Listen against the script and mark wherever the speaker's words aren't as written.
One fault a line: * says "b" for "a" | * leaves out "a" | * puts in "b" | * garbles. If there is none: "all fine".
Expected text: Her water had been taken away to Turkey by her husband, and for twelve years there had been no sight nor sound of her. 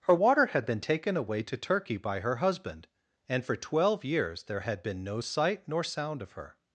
all fine